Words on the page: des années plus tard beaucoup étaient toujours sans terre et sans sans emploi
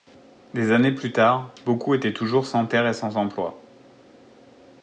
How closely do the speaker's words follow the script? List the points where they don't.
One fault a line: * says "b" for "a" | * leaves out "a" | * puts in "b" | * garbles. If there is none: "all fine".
* leaves out "sans"